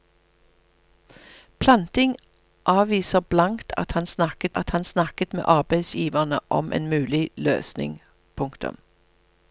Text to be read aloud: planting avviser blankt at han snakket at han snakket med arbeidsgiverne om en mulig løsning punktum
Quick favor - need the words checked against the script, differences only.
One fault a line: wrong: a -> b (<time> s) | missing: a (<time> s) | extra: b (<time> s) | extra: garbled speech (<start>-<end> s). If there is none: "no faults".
no faults